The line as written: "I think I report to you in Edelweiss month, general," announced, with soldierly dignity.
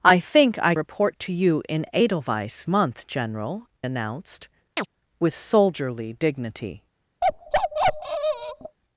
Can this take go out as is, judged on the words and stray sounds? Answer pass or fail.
fail